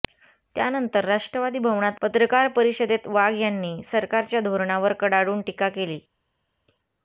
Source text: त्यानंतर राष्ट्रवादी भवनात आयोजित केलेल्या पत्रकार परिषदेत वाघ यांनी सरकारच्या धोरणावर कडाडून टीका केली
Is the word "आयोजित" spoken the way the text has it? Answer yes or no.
no